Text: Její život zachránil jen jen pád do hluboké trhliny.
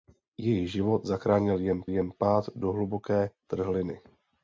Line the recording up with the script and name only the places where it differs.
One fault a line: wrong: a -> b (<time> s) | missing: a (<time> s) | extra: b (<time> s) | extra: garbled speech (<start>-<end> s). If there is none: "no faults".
no faults